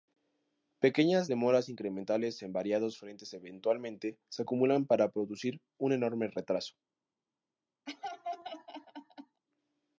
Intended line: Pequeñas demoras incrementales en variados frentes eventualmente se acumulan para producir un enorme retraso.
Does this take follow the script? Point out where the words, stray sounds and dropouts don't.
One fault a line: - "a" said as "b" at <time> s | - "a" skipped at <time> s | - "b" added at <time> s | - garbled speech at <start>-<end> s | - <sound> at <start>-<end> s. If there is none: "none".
- laugh at 7.9-9.4 s